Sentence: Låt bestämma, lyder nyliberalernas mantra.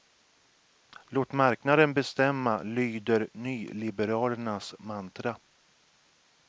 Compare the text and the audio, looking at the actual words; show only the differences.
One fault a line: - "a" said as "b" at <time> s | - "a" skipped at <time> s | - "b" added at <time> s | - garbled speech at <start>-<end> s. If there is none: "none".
- "marknaden" added at 1.3 s